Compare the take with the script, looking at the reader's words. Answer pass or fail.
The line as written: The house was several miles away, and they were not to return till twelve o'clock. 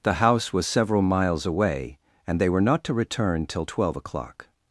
pass